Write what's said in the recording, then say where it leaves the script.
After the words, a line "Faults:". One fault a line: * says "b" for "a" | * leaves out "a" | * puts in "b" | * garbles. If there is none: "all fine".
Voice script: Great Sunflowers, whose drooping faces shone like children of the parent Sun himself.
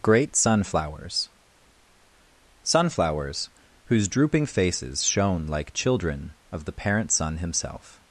Great Sunflowers Sunflowers, whose drooping faces shone like children of the parent Sun himself.
Faults:
* puts in "Sunflowers"